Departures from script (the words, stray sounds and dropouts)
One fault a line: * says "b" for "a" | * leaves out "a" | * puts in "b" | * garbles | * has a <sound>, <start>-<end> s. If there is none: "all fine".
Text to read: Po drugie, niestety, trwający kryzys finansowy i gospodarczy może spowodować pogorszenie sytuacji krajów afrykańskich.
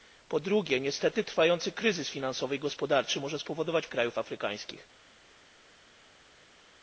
* leaves out "pogorszenie sytuacji"